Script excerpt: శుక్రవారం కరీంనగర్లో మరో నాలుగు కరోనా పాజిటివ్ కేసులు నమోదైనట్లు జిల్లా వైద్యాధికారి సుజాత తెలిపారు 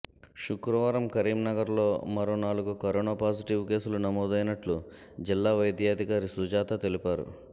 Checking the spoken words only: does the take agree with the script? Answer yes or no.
yes